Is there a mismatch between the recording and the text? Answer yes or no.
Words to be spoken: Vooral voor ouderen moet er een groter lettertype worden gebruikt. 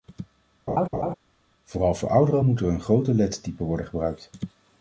no